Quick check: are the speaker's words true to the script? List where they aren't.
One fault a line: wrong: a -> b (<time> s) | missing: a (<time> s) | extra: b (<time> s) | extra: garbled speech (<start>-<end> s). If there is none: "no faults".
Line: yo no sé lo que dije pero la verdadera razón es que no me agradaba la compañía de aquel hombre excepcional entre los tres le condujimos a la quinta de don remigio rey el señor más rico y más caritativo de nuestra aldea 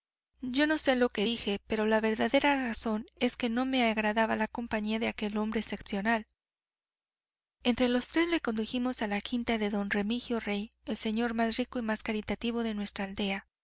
no faults